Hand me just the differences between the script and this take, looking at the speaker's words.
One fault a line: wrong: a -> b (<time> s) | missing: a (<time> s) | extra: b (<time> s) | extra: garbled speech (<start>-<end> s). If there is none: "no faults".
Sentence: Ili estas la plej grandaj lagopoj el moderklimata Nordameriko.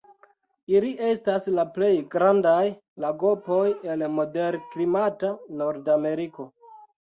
no faults